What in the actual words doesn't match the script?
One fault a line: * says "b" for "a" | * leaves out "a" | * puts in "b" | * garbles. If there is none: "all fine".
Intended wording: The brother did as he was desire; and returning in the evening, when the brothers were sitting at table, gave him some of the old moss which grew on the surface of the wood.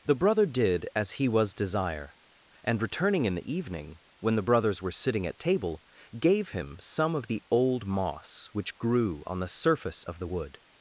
all fine